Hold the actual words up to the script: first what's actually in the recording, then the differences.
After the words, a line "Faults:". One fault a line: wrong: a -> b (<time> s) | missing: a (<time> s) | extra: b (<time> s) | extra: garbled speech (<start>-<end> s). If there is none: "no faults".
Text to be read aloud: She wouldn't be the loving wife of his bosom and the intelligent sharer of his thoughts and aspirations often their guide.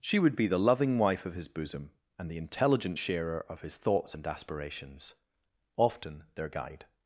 She would be the loving wife of his bosom and the intelligent sharer of his thoughts and aspirations often their guide.
Faults:
wrong: wouldn't -> would (0.2 s)